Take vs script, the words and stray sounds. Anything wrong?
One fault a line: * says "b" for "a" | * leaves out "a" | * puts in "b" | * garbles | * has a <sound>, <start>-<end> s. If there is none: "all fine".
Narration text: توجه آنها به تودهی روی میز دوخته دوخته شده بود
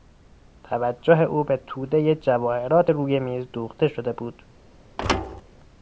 * says "او" for "آنها"
* puts in "جواهرات"
* leaves out "دوخته"
* has a thud, 5.0-5.4 s